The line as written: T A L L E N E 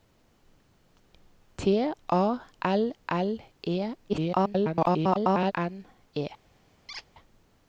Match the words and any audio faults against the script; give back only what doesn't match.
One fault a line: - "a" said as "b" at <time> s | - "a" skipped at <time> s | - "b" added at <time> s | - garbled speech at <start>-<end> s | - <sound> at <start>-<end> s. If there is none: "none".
- garbled speech at 4.1-5.5 s
- squeak at 6.9-7.1 s